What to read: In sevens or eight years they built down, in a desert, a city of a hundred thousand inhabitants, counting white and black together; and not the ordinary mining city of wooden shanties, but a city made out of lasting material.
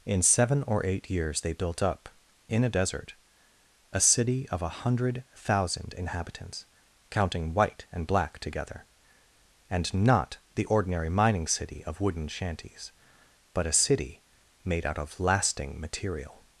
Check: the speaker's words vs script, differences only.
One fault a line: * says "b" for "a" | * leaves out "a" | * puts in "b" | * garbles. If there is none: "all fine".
* says "seven" for "sevens"
* says "up" for "down"